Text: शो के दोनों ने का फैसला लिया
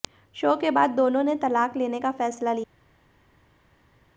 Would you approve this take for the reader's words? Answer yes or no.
no